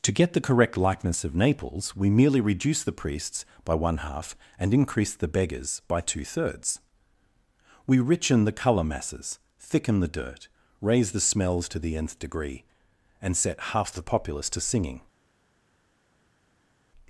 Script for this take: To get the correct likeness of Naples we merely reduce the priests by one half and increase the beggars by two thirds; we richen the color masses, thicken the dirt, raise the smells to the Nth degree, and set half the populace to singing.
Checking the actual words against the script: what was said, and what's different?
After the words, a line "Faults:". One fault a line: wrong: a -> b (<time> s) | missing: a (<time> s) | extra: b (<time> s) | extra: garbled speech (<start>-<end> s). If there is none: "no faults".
To get the correct likeness of Naples we merely reduce the priests by one half and increase the beggars by two thirds; we richen the color masses, thicken the dirt, raise the smells to the Nth degree, and set half the populace to singing.
Faults:
no faults